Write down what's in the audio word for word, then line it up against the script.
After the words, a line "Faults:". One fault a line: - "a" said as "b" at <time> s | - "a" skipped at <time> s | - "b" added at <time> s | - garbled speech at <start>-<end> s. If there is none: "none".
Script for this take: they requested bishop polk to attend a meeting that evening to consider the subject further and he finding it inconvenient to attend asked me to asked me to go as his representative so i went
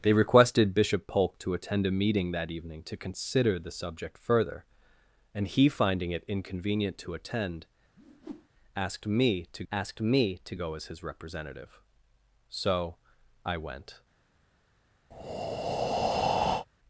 they requested bishop polk to attend a meeting that evening to consider the subject further and he finding it inconvenient to attend asked me to asked me to go as his representative so i went
Faults:
none